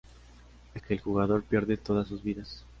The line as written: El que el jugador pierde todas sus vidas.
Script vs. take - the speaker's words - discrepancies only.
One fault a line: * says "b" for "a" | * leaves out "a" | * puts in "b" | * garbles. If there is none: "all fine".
all fine